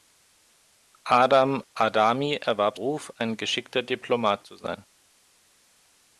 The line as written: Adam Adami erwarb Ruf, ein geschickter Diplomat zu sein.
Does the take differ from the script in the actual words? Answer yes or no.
no